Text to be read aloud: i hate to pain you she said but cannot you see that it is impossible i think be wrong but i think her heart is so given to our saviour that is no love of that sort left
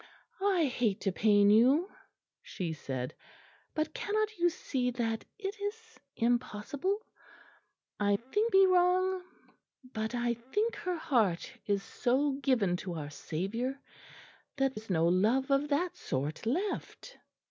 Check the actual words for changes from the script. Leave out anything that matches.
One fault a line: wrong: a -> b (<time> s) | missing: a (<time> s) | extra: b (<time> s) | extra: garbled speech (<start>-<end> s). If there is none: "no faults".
no faults